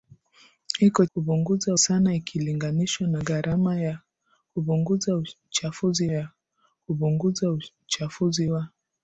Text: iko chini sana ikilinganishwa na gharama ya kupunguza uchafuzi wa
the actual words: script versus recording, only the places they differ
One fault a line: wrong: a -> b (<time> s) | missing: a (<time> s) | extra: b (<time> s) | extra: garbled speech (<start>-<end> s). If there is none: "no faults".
wrong: chini -> kupunguza (1.1 s)
extra: ya kupunguza uchafuzi (6.1 s)